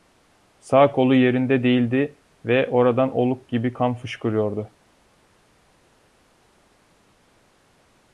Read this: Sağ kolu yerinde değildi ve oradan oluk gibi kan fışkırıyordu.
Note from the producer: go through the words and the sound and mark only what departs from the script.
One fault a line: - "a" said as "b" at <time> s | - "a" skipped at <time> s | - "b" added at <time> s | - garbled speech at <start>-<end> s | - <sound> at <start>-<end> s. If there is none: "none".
none